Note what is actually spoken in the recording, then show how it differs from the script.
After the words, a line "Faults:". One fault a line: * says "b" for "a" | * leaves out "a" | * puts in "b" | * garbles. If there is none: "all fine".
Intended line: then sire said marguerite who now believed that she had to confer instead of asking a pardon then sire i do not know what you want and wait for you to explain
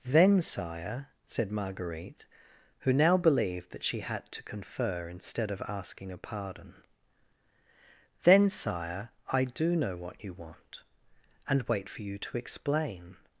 then sire said marguerite who now believed that she had to confer instead of asking a pardon then sire i do know what you want and wait for you to explain
Faults:
* leaves out "not"